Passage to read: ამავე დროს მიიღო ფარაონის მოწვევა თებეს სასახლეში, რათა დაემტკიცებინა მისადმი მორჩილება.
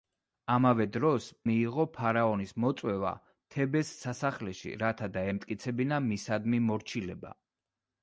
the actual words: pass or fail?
pass